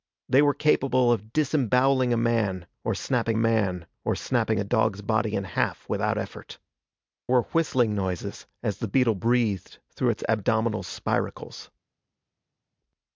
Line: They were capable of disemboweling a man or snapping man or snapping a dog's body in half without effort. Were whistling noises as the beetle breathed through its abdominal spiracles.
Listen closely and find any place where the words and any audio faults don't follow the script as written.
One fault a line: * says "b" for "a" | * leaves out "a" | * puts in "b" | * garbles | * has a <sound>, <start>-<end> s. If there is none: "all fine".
all fine